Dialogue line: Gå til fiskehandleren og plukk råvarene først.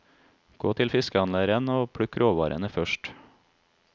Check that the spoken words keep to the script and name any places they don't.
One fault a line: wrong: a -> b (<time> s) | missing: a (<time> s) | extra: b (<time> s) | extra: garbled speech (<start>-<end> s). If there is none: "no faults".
no faults